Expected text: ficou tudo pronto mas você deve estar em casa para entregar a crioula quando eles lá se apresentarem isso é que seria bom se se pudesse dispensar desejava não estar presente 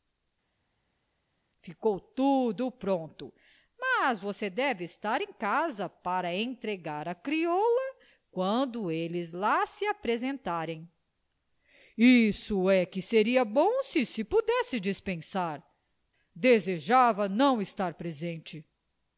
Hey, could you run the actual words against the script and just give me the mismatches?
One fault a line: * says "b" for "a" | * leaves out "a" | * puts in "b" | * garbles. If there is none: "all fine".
all fine